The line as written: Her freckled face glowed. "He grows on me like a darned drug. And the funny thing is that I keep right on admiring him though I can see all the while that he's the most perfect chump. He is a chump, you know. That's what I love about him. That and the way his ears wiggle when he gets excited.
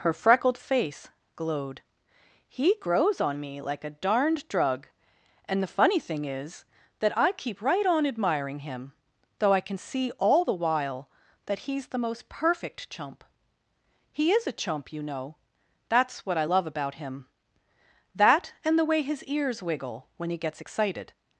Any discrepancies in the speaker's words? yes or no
no